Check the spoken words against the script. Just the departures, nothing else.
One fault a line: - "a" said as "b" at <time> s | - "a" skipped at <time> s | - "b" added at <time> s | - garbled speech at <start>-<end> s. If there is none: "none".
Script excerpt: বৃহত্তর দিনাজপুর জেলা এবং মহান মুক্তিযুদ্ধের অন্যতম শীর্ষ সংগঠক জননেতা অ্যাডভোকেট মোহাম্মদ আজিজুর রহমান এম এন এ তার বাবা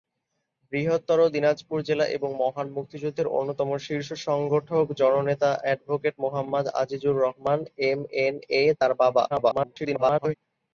- garbled speech at 9.3-10.3 s